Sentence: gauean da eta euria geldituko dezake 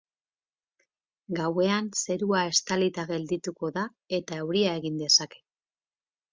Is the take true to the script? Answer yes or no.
no